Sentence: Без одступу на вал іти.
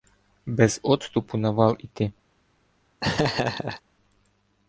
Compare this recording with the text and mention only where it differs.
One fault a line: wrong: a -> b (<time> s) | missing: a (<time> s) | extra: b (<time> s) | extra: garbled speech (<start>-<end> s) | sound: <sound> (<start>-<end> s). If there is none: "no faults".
sound: laugh (3.0-3.8 s)